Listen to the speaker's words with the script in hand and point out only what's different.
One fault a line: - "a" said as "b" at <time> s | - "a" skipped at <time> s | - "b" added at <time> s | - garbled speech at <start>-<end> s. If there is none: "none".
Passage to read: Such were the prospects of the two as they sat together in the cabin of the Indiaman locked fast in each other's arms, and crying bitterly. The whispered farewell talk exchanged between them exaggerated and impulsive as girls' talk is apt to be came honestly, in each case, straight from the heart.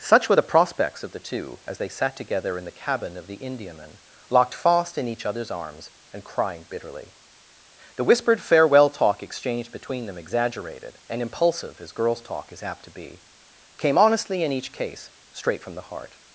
none